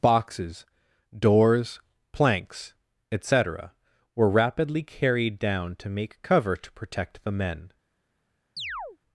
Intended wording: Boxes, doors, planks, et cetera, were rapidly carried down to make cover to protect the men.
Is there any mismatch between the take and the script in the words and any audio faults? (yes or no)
yes